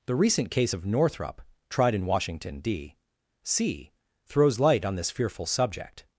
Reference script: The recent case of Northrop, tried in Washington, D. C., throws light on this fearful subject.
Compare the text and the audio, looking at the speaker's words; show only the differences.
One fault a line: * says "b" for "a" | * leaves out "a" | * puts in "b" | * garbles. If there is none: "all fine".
all fine